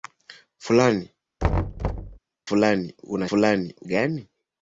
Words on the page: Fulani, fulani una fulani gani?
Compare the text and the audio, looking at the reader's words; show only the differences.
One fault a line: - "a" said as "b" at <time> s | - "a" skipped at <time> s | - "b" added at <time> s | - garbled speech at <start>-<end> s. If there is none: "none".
none